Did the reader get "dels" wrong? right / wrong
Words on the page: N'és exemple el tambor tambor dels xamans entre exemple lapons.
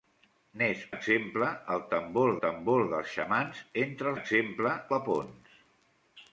right